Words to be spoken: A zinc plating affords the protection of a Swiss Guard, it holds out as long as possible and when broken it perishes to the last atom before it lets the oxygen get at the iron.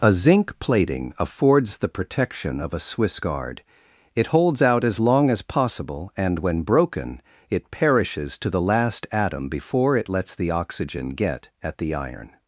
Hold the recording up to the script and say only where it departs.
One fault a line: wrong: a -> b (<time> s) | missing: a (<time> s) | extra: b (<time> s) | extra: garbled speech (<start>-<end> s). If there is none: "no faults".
no faults